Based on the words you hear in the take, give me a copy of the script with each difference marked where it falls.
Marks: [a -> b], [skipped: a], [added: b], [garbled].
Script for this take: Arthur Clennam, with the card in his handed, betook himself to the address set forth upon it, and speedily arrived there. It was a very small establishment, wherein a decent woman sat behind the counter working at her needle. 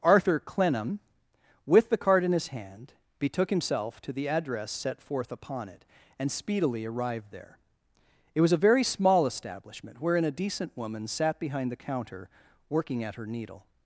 Arthur Clennam, with the card in his [handed, -> hand] betook himself to the address set forth upon it, and speedily arrived there. It was a very small establishment, wherein a decent woman sat behind the counter working at her needle.